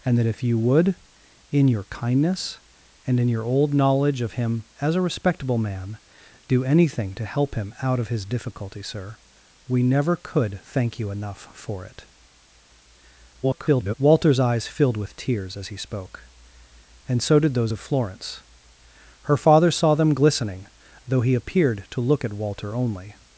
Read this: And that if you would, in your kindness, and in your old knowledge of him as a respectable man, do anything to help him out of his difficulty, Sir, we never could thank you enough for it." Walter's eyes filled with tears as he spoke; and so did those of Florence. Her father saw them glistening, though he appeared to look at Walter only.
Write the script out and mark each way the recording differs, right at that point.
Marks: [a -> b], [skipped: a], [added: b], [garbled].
And that if you would, in your kindness, and in your old knowledge of him as a respectable man, do anything to help him out of his difficulty, Sir, we never could thank you enough for it." [garbled] Walter's eyes filled with tears as he spoke; and so did those of Florence. Her father saw them glistening, though he appeared to look at Walter only.